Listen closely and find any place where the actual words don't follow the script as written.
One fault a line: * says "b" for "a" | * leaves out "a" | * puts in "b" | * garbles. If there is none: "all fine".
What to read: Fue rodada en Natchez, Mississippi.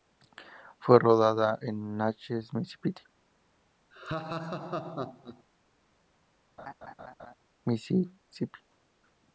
all fine